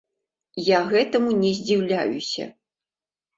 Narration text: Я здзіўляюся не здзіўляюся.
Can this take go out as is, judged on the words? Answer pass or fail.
fail